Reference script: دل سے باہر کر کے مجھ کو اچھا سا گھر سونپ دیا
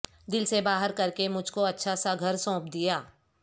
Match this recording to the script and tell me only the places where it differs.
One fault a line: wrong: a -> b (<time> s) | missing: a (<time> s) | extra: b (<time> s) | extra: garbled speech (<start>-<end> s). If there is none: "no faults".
no faults